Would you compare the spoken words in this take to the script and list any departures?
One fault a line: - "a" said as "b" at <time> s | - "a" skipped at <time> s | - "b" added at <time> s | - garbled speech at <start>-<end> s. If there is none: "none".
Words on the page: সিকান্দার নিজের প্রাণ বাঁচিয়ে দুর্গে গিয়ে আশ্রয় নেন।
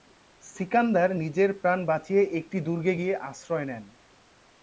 - "একটি" added at 2.4 s